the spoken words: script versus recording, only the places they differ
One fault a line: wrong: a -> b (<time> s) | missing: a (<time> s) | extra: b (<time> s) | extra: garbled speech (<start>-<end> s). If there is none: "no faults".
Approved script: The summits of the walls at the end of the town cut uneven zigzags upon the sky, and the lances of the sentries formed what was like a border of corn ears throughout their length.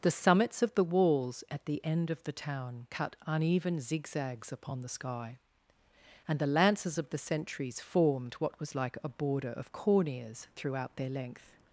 no faults